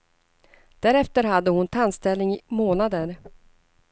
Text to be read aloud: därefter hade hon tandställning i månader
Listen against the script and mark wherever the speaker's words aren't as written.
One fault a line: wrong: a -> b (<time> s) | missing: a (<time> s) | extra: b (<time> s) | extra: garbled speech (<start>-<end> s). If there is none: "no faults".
no faults